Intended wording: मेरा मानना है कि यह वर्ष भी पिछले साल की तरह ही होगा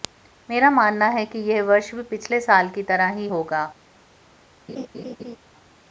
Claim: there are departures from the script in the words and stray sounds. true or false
true